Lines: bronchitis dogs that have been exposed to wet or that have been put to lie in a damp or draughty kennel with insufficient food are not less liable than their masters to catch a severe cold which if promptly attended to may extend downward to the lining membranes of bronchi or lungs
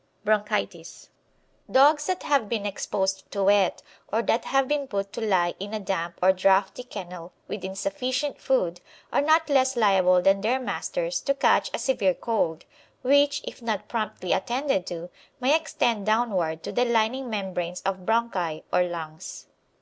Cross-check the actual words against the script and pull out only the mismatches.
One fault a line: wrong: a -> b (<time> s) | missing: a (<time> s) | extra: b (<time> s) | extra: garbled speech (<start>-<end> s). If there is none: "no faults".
extra: not (13.6 s)